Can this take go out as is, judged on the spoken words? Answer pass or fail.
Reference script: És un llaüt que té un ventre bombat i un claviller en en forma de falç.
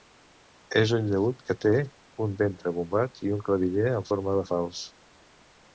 fail